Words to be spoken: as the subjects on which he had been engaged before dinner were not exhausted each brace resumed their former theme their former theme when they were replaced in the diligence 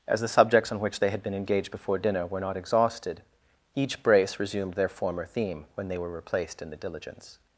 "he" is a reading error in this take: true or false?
true